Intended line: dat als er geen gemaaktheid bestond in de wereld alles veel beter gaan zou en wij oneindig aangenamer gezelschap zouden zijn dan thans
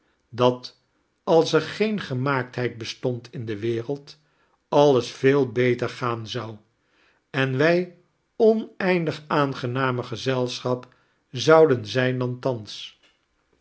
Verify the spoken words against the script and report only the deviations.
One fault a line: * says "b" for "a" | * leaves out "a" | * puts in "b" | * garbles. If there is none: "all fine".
all fine